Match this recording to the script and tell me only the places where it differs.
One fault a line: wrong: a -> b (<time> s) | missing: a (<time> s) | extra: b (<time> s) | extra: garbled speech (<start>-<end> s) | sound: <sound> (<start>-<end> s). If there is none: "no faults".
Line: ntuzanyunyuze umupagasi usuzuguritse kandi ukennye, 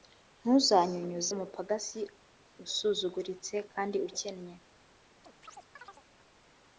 sound: chirp (5.2-6.0 s)